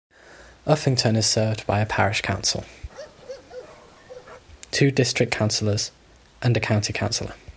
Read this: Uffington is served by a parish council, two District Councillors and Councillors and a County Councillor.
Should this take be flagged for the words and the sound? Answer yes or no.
yes